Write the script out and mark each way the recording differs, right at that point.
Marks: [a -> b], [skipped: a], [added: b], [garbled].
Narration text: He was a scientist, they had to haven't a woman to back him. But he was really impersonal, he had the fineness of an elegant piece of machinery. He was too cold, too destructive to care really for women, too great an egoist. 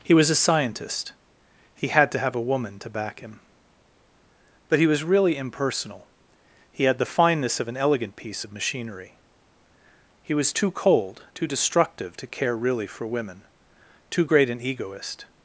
He was a scientist, [they -> he] had to [haven't -> have] a woman to back him. But he was really impersonal, he had the fineness of an elegant piece of machinery. He was too cold, too destructive to care really for women, too great an egoist.